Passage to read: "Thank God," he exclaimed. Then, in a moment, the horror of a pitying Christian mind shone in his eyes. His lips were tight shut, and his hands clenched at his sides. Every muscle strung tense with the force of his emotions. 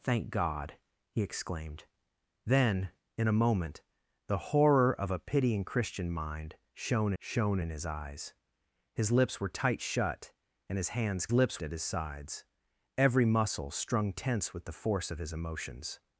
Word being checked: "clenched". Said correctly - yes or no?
no